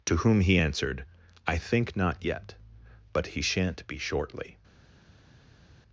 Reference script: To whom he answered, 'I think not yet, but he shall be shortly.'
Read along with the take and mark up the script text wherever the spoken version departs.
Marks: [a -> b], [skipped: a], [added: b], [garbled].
To whom he answered, 'I think not yet, but he [shall -> shan't] be shortly.'